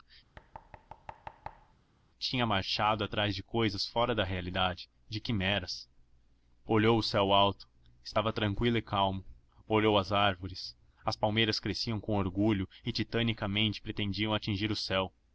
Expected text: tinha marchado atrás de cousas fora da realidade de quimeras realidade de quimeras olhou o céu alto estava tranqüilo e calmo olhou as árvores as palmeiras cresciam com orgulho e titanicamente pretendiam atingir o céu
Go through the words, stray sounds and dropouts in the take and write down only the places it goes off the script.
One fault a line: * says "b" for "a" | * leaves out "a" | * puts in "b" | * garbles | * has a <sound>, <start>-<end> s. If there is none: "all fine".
* has a thud, 0.4-1.7 s
* leaves out "realidade de quimeras"